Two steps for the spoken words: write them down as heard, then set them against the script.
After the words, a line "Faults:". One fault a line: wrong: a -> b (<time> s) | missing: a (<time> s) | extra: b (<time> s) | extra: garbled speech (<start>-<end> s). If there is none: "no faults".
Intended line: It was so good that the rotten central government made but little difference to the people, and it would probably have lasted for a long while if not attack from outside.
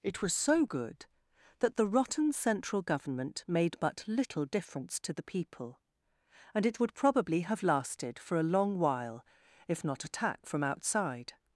It was so good that the rotten central government made but little difference to the people, and it would probably have lasted for a long while if not attack from outside.
Faults:
no faults